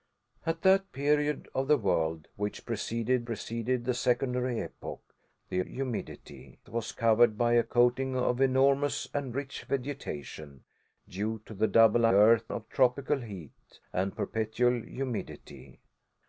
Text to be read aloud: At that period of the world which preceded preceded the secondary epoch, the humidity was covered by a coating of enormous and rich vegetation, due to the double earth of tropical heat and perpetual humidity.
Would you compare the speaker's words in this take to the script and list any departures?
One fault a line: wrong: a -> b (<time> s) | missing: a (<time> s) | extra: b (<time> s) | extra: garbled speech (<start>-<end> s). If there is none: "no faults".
no faults